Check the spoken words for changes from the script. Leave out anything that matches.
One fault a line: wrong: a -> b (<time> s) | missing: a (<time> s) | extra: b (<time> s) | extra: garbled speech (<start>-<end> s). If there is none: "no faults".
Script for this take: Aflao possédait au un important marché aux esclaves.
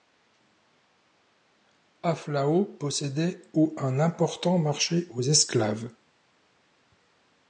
no faults